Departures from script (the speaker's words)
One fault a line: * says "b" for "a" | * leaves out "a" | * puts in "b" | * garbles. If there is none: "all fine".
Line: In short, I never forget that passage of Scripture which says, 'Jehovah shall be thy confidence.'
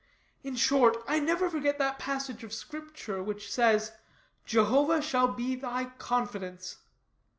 all fine